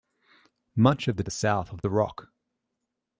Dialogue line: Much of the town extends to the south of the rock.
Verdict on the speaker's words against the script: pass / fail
fail